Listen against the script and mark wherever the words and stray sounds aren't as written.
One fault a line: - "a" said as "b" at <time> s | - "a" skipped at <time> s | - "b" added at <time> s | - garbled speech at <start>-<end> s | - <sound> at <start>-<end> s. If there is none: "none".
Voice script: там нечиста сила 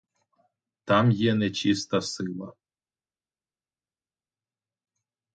- "є" added at 1.1 s